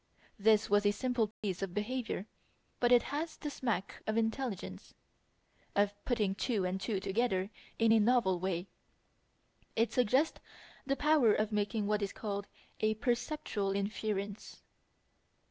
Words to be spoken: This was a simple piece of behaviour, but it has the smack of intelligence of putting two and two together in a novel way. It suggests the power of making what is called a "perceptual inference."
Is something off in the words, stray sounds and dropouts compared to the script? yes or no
yes